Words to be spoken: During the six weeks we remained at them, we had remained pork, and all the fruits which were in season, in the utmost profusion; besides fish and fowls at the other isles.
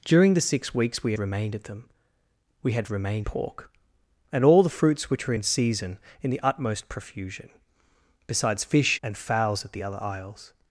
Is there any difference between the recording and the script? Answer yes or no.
no